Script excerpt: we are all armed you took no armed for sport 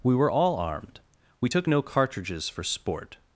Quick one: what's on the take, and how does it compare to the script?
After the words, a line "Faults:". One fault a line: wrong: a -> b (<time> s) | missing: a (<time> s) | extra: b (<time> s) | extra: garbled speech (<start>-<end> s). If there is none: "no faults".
we were all armed we took no cartridges for sport
Faults:
wrong: are -> were (0.1 s)
wrong: you -> we (1.4 s)
wrong: armed -> cartridges (1.8 s)